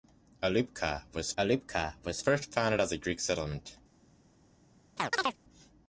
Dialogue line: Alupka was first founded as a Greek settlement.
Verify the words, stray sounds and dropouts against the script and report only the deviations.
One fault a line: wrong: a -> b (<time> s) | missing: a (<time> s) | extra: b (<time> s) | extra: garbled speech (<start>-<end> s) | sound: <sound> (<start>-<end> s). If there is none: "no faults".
extra: alupka was (1.4 s)
sound: chirp (5.0-5.4 s)